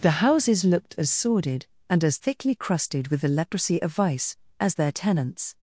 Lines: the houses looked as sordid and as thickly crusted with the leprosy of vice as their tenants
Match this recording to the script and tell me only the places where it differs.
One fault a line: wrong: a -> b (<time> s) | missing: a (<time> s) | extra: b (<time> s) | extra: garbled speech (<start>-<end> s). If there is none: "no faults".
no faults